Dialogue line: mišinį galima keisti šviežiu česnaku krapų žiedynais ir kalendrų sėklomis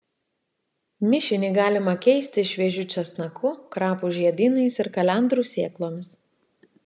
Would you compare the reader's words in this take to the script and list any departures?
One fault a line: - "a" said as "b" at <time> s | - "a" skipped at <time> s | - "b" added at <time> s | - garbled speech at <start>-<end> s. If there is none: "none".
none